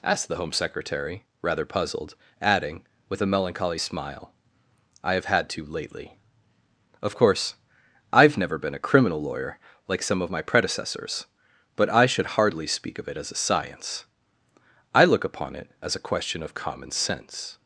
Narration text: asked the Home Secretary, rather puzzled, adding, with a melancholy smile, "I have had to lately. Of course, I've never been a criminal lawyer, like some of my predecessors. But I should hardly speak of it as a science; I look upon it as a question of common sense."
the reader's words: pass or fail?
pass